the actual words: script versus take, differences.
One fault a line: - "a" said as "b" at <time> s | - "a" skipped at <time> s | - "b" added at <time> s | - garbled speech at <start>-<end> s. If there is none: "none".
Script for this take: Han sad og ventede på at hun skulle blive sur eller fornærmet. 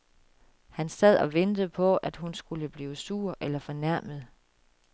none